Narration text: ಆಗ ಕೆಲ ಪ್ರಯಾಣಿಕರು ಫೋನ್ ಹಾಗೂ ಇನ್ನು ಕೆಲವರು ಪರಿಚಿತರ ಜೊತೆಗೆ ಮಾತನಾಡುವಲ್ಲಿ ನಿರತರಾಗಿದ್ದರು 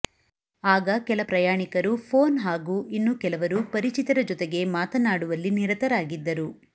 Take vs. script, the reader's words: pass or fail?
pass